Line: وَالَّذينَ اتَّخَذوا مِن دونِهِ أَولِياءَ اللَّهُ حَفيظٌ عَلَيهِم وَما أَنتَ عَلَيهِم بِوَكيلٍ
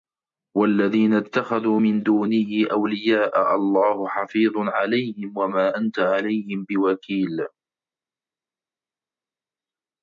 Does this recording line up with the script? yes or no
yes